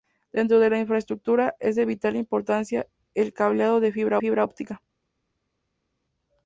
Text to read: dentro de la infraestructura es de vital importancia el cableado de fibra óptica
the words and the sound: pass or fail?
fail